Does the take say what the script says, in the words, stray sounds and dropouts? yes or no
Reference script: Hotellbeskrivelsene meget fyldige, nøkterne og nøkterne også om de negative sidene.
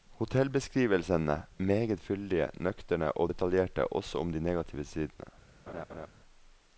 no